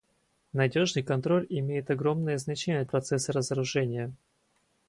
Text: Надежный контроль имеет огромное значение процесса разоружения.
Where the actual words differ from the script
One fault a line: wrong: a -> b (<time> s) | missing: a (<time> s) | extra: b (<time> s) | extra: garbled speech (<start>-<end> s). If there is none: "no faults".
no faults